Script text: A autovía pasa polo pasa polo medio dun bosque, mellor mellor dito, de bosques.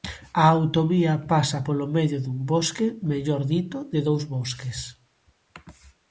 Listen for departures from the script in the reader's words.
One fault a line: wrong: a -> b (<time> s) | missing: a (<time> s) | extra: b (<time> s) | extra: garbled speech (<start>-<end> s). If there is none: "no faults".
missing: pasa polo (1.9 s)
missing: mellor (3.4 s)
extra: dous (4.1 s)